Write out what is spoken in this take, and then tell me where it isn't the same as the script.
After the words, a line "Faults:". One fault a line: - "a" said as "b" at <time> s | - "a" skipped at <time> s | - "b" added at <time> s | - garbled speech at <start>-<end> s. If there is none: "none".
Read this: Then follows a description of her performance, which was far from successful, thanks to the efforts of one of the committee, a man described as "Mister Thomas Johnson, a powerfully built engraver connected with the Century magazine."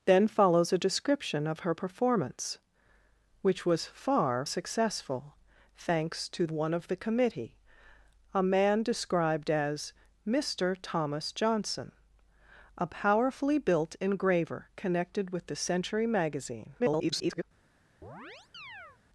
Then follows a description of her performance, which was far successful, thanks to one of the committee, a man described as "Mister Thomas Johnson, a powerfully built engraver connected with the Century magazine." [garbled]
Faults:
- "from" skipped at 4.5 s
- "the efforts of" skipped at 6.4 s
- garbled speech at 16.8-17.4 s